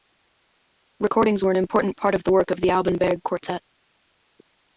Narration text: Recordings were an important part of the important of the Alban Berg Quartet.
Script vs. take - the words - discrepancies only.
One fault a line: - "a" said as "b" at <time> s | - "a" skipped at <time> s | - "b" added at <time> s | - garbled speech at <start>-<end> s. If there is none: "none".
- "important" said as "work" at 2.3 s